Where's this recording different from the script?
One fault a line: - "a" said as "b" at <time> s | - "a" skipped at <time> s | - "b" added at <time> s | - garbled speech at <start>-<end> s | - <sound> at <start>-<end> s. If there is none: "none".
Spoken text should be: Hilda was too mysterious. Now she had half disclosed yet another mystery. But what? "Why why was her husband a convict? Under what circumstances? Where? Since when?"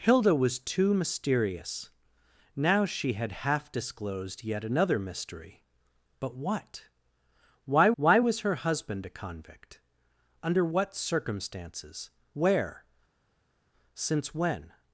none